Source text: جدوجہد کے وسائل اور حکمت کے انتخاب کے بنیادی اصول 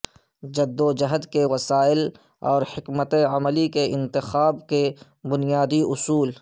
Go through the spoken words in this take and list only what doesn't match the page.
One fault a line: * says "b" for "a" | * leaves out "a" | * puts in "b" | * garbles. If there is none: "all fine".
* puts in "عملی"